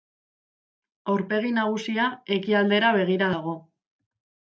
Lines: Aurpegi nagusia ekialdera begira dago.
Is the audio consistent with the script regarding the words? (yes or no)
yes